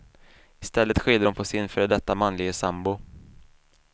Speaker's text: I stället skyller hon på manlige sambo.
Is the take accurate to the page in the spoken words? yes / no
no